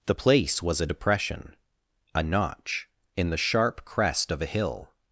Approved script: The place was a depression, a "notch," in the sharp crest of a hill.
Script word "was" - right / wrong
right